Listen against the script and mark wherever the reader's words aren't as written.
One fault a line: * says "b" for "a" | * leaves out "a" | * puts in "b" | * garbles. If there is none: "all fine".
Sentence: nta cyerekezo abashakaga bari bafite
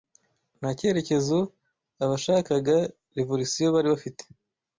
* puts in "revolisiyo"